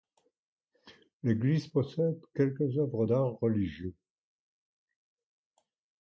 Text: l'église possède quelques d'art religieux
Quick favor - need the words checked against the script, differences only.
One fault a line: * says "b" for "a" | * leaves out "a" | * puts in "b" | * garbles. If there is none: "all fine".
* puts in "œuvres"